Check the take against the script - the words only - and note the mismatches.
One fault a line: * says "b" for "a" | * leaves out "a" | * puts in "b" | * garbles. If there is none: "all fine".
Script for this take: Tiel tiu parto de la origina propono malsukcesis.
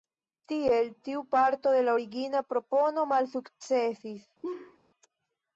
all fine